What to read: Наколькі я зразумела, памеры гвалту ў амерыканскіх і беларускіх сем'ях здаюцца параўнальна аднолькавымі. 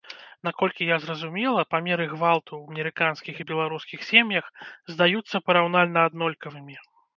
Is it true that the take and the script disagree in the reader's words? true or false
false